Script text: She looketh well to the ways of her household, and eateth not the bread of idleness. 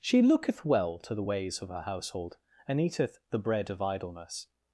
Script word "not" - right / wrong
wrong